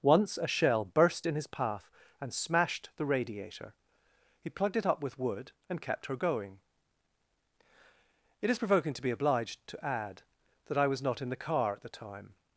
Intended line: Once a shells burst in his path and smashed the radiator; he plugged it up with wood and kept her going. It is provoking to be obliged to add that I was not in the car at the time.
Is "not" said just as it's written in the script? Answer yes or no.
yes